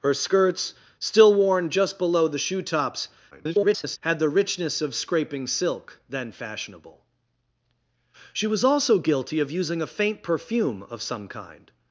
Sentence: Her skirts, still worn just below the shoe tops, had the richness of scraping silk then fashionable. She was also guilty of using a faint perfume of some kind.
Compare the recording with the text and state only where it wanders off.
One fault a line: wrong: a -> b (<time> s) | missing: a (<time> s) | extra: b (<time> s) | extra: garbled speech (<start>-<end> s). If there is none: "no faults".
extra: garbled speech (3.3-4.0 s)